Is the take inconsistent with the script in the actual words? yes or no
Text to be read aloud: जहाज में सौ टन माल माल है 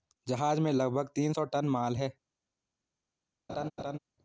yes